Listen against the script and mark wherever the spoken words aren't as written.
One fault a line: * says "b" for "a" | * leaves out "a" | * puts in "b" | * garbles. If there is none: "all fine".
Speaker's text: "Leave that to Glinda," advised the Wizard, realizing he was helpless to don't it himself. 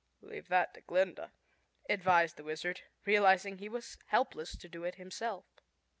* says "do" for "don't"